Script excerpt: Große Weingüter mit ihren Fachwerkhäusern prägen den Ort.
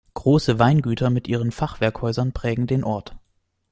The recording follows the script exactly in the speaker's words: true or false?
true